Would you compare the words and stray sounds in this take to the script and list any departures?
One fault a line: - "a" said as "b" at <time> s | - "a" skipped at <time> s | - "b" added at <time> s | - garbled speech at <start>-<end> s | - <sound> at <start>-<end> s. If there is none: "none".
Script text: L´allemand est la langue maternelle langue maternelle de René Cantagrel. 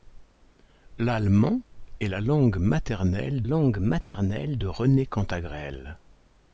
- dropout at 4.0-4.1 s